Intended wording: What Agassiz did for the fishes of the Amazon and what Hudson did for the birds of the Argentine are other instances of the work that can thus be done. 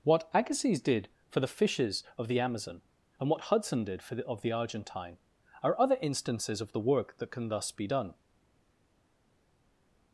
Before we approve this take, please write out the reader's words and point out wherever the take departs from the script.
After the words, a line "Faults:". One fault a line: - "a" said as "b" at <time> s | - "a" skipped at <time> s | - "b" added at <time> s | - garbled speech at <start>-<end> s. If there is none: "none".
What Agassiz did for the fishes of the Amazon and what Hudson did for the of the Argentine are other instances of the work that can thus be done.
Faults:
- "birds" skipped at 4.2 s